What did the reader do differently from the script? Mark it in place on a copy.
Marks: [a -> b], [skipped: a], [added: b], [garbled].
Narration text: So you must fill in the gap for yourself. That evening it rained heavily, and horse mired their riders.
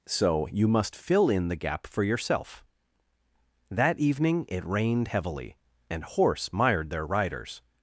So you must fill in the gap for yourself. That evening it rained heavily, and horse mired their riders.